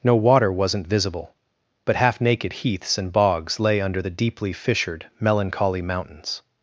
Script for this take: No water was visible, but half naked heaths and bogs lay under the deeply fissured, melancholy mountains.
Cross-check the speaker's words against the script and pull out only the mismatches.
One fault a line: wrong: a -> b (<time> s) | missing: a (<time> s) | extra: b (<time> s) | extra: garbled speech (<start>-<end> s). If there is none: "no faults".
wrong: was -> wasn't (0.5 s)